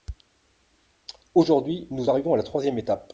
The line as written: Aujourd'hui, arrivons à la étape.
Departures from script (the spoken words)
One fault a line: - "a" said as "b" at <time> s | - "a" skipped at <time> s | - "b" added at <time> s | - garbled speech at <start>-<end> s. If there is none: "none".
- "nous" added at 1.9 s
- "troisième" added at 2.4 s